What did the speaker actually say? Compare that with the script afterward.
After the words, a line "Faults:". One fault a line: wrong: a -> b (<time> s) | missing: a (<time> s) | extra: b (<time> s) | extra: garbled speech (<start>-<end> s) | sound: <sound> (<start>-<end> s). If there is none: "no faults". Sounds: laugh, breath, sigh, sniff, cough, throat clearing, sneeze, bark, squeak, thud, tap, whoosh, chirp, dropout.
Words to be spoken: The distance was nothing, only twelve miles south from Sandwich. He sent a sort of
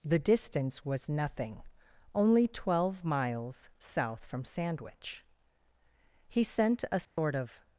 The distance was nothing, only twelve miles south from Sandwich. He sent a sort of
Faults:
sound: dropout (7.1-7.2 s)